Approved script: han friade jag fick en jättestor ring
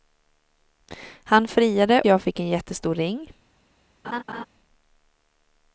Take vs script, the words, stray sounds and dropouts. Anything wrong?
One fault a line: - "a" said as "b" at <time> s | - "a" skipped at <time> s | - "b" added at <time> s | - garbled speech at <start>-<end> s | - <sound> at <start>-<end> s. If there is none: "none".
- laugh at 4.0-4.5 s